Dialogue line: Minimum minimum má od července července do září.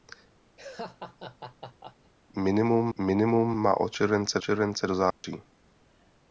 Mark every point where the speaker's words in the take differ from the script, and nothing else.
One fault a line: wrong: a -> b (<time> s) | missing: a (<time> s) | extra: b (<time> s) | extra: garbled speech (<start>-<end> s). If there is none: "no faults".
no faults